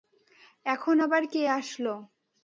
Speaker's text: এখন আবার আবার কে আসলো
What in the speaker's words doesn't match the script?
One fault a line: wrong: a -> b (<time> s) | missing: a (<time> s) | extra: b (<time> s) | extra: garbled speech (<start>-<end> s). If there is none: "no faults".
missing: আবার (1.2 s)